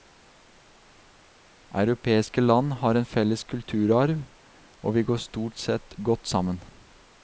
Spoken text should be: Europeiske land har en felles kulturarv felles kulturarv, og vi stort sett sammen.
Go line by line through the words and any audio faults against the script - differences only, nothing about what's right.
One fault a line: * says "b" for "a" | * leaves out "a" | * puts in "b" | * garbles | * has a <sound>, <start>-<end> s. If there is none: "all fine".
* leaves out "felles kulturarv"
* puts in "går"
* puts in "godt"